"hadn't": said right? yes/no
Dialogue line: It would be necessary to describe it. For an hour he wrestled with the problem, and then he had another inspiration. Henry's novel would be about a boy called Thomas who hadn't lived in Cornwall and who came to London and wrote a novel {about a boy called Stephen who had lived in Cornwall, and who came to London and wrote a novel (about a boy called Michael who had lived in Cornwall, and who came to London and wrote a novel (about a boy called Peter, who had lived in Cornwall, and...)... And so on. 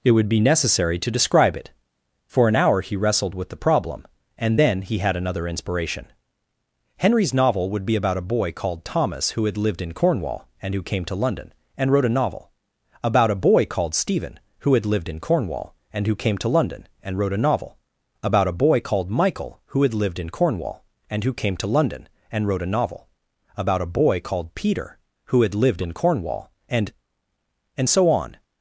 no